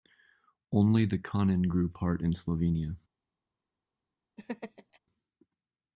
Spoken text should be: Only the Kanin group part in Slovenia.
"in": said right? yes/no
yes